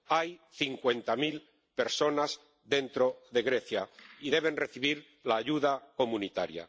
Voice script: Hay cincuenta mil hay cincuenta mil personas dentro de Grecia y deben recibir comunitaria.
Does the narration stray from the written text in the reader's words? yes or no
yes